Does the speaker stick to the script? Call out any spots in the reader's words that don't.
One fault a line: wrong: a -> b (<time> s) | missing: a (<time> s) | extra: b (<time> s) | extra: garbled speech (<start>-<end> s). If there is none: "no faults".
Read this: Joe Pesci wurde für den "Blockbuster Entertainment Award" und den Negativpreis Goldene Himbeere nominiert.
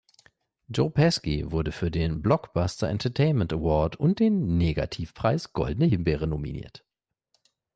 no faults